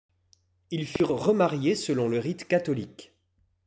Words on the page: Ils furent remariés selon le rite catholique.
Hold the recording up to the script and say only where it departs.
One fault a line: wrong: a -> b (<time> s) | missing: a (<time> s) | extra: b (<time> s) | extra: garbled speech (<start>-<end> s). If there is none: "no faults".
no faults